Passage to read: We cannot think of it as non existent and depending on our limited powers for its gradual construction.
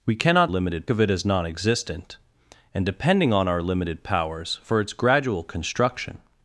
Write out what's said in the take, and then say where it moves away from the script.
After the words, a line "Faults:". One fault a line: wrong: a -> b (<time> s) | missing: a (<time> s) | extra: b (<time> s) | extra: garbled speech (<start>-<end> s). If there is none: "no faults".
We cannot limited of it as non existent and depending on our limited powers for its gradual construction.
Faults:
wrong: think -> limited (0.5 s)